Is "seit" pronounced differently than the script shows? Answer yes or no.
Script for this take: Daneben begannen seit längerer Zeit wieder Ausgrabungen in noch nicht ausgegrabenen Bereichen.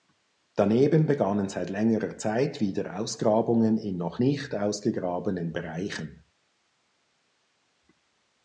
no